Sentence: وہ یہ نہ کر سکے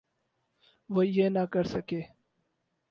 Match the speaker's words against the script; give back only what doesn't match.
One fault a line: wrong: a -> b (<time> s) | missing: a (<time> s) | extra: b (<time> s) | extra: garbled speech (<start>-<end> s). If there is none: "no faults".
no faults